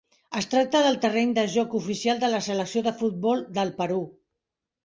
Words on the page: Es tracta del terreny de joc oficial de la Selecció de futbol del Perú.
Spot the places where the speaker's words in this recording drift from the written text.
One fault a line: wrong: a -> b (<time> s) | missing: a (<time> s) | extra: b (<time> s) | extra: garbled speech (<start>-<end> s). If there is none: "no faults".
no faults